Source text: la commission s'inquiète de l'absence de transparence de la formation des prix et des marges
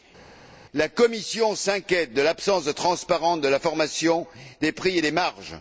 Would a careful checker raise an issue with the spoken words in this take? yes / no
no